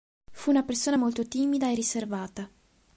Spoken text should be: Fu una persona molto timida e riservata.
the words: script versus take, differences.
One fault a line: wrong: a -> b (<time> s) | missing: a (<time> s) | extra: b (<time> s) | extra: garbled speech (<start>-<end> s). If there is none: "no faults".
no faults